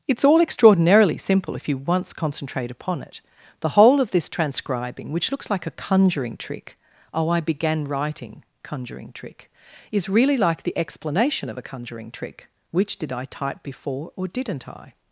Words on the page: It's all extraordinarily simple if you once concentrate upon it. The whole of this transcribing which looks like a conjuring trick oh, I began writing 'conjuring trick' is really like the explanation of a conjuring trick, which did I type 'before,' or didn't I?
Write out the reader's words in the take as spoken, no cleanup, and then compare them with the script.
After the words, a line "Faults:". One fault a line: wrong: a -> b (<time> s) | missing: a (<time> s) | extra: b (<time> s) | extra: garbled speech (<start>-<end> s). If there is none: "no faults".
It's all extraordinarily simple if you once concentrate upon it. The whole of this transcribing which looks like a conjuring trick oh, I began writing 'conjuring trick' is really like the explanation of a conjuring trick, which did I type 'before,' or didn't I?
Faults:
no faults